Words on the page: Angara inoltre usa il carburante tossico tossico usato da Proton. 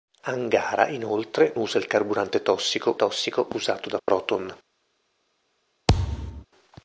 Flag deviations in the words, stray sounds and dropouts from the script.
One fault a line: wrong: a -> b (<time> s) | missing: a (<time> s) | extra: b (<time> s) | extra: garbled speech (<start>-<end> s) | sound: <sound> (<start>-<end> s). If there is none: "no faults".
sound: dropout (4.0-4.1 s)
sound: thud (5.9-6.5 s)